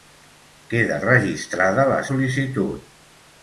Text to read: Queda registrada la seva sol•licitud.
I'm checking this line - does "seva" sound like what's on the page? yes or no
no